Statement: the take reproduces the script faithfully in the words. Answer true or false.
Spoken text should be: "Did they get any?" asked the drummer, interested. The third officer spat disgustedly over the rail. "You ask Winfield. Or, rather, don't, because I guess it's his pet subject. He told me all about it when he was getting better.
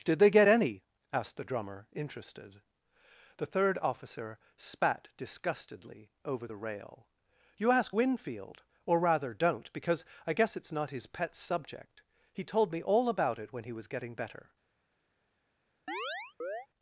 false